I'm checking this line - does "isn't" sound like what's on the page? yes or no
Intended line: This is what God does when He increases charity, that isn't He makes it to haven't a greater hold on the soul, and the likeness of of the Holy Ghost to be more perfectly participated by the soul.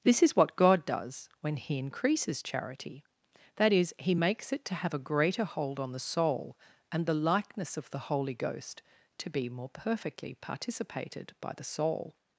no